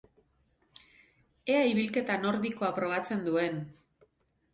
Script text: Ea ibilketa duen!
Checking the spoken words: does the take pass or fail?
fail